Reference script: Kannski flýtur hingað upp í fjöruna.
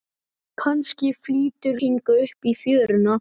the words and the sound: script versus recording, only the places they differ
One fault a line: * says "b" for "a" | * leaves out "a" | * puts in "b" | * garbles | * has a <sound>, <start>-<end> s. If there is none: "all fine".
all fine